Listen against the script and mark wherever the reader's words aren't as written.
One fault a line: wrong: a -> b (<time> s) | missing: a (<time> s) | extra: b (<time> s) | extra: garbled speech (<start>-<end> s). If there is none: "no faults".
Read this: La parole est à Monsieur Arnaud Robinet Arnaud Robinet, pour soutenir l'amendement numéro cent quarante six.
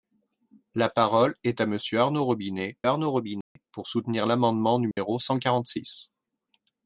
no faults